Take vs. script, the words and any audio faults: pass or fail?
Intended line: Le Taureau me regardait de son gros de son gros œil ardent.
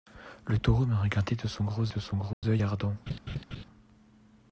fail